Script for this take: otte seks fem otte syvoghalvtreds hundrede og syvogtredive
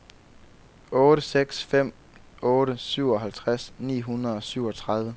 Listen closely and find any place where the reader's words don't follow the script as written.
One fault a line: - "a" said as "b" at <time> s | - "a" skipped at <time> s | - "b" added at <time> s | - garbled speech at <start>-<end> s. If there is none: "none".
- "ni" added at 3.8 s